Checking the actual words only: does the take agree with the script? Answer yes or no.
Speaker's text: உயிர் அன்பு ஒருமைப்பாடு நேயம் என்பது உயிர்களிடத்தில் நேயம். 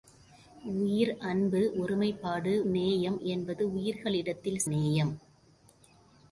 yes